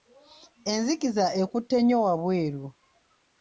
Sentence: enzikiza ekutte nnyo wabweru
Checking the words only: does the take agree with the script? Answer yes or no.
yes